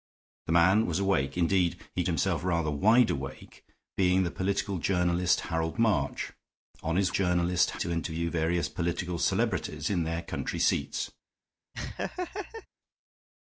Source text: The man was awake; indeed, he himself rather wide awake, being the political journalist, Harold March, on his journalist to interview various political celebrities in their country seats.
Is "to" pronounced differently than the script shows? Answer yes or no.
no